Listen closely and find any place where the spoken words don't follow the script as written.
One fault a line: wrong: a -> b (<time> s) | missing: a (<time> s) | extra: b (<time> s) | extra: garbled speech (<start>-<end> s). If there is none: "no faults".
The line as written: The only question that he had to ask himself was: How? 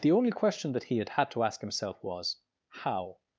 extra: had (1.1 s)